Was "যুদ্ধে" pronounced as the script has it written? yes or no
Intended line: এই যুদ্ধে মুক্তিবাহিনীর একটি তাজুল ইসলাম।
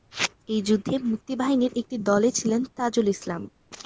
yes